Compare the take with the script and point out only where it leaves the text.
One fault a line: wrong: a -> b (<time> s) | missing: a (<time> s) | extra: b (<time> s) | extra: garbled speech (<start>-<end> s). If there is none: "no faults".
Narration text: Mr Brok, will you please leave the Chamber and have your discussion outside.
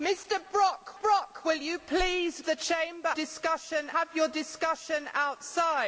extra: Brok (1.0 s)
missing: leave (2.5 s)
wrong: and -> discussion (3.1 s)